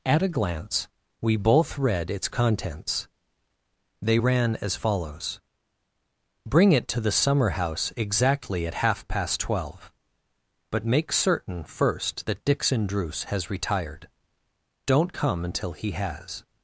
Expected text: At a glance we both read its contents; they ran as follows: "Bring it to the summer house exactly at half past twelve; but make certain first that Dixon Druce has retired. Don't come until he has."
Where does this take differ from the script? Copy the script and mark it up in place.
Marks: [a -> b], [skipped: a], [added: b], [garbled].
At a glance we both read its contents; they ran as follows: "Bring it to the summer house exactly at half past twelve; but make certain first that Dixon Druce has retired. Don't come until he has."